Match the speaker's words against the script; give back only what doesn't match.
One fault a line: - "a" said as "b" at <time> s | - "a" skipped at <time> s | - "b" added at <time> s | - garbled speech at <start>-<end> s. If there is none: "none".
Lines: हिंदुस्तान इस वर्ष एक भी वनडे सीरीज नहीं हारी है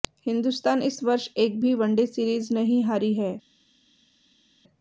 none